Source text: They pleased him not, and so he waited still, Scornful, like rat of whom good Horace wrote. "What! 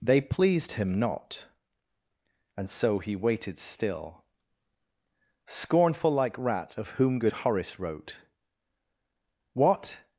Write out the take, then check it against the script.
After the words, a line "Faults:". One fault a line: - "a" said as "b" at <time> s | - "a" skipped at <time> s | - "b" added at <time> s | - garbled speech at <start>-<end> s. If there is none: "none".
They pleased him not, and so he waited still, Scornful, like rat of whom good Horace wrote. "What!
Faults:
none